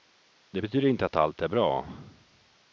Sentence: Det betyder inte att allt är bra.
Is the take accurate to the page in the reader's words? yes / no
yes